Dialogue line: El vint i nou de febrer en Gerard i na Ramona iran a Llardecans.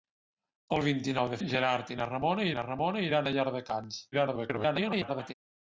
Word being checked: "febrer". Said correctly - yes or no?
no